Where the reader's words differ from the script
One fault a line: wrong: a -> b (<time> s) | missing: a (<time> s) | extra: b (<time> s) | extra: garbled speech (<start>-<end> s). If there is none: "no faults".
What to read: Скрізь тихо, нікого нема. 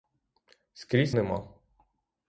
missing: тихо нікого (1.1 s)